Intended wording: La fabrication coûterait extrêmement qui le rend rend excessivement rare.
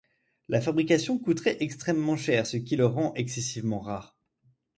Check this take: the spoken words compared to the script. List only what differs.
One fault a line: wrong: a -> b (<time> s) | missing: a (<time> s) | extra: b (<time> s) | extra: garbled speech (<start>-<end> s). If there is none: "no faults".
extra: cher ce (2.2 s)
missing: rend (3.1 s)